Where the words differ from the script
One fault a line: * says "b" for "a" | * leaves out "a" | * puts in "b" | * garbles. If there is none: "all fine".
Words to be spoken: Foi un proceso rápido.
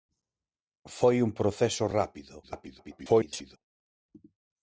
* garbles